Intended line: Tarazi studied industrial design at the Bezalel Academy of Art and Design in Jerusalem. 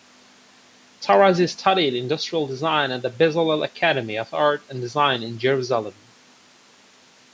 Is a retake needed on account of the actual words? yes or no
no